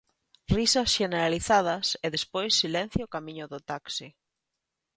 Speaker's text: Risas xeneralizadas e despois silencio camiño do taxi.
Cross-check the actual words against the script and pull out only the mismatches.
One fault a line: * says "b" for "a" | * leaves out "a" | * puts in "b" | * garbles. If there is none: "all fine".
all fine